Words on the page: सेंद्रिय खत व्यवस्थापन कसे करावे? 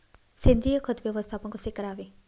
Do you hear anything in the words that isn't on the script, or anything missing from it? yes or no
no